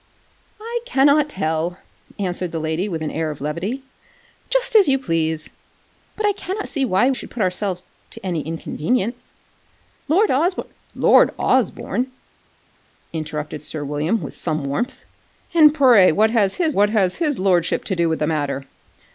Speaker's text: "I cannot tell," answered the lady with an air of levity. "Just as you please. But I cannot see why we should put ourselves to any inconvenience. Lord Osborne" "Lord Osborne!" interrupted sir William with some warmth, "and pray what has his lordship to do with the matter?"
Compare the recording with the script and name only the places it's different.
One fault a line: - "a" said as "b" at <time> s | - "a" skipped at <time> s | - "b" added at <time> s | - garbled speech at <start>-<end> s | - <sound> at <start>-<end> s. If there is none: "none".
- "we" skipped at 7.1 s
- "what has his" added at 16.7 s